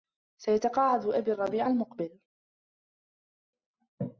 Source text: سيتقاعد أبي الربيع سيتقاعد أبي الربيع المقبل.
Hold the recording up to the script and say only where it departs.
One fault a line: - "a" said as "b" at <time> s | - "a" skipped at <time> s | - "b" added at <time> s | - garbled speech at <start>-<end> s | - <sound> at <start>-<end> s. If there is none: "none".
- "سيتقاعد أبي الربيع" skipped at 1.7 s